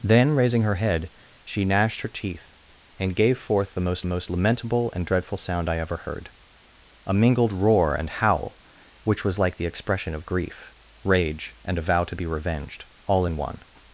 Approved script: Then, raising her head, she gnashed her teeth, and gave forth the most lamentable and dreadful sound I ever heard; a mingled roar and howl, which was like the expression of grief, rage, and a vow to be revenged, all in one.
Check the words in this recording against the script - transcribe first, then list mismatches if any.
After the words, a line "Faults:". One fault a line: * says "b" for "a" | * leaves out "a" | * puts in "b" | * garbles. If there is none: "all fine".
Then, raising her head, she gnashed her teeth, and gave forth the most most lamentable and dreadful sound I ever heard; a mingled roar and howl, which was like the expression of grief, rage, and a vow to be revenged, all in one.
Faults:
* puts in "most"